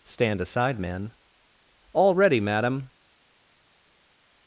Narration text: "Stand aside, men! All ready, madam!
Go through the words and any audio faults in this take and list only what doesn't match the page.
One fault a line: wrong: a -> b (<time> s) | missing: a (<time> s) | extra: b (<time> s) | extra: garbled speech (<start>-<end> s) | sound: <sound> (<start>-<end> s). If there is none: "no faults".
no faults